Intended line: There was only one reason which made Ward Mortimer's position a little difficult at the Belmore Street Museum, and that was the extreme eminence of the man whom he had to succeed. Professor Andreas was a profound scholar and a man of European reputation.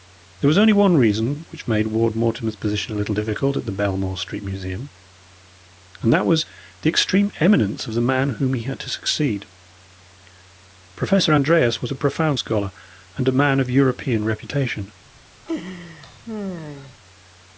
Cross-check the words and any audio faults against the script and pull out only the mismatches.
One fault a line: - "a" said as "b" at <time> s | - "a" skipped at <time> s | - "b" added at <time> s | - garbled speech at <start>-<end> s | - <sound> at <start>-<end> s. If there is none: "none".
- laugh at 15.5-17.0 s